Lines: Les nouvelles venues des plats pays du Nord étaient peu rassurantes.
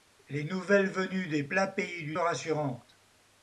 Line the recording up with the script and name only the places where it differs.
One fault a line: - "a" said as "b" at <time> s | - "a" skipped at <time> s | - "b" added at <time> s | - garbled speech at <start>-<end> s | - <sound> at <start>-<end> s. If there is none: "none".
- "Nord étaient peu" skipped at 2.2 s